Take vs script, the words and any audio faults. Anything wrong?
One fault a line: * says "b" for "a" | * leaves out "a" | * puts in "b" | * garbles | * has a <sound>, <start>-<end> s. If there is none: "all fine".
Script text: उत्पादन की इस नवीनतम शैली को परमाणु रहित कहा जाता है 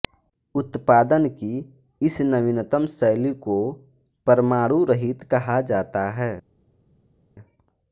all fine